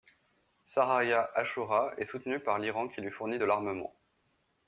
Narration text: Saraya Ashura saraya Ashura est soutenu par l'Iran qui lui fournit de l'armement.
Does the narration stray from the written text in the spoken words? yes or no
yes